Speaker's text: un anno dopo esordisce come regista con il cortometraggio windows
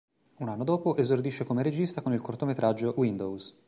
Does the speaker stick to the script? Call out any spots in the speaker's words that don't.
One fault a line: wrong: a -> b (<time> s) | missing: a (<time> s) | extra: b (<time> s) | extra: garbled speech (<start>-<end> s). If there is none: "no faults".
no faults